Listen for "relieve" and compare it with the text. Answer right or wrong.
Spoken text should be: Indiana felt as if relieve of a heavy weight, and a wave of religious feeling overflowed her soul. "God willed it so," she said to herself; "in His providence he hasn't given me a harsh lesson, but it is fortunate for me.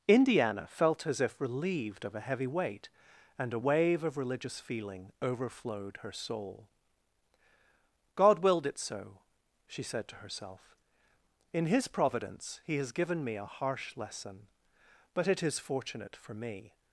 wrong